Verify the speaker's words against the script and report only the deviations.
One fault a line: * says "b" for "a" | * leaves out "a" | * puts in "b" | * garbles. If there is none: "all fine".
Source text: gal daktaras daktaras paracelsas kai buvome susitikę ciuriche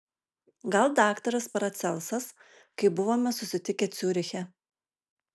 * leaves out "daktaras"